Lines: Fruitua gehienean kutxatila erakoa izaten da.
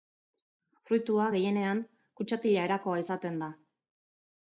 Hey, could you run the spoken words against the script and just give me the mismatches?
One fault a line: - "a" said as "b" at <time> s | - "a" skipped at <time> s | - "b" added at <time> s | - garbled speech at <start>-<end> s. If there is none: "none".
none